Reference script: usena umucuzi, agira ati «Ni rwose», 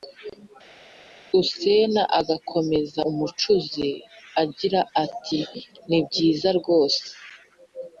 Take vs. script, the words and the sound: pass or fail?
fail